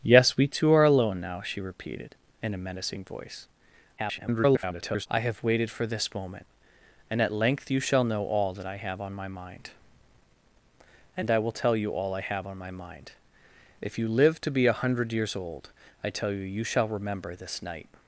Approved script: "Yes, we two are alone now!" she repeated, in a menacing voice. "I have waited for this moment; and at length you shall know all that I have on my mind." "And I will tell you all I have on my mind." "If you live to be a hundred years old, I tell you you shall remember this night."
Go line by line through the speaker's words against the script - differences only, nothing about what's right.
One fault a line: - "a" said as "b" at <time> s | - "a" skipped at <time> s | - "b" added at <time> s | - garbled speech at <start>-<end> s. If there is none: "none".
- garbled speech at 4.0-5.1 s